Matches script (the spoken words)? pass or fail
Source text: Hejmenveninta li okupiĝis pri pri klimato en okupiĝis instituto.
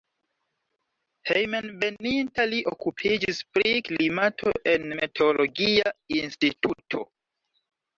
fail